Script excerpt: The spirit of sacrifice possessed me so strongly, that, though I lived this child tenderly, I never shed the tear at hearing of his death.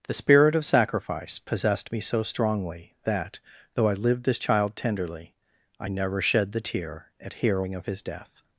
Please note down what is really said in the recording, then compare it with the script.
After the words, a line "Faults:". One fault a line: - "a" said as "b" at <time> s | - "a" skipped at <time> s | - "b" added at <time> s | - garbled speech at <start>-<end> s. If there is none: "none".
The spirit of sacrifice possessed me so strongly, that, though I lived this child tenderly, I never shed the tear at hearing of his death.
Faults:
none